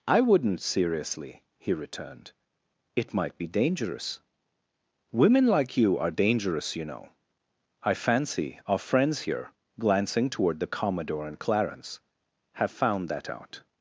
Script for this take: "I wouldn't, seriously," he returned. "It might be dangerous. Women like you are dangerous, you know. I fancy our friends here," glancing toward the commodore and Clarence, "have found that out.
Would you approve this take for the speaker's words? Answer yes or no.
yes